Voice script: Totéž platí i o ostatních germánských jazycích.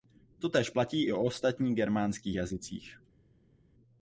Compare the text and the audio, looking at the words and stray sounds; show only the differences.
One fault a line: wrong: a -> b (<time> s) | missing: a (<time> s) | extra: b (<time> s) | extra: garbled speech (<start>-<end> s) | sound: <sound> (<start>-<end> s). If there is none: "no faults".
no faults